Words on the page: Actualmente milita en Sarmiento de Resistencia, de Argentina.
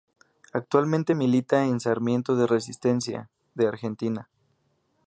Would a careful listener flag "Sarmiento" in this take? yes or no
no